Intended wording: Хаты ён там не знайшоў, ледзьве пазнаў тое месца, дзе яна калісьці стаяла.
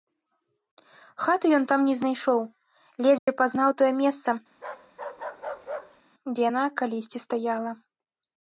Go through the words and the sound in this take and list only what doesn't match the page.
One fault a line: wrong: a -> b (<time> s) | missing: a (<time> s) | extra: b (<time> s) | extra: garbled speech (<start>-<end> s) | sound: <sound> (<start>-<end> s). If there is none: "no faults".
sound: dropout (3.2-3.3 s)
sound: bark (4.5-6.0 s)